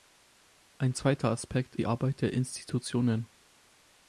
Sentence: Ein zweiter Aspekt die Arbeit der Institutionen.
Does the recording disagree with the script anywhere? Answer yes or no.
no